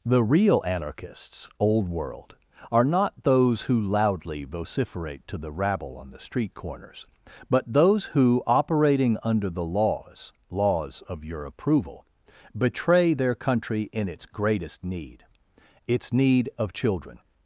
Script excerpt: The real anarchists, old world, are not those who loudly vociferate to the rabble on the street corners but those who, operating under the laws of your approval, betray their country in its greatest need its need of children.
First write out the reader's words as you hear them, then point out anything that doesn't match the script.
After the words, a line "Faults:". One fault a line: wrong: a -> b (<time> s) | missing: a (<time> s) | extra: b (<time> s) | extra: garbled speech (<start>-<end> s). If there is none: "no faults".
The real anarchists, old world, are not those who loudly vociferate to the rabble on the street corners but those who, operating under the laws laws of your approval, betray their country in its greatest need its need of children.
Faults:
extra: laws (10.5 s)